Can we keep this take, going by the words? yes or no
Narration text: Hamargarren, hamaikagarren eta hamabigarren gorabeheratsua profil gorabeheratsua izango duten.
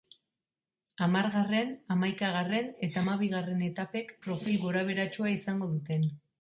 no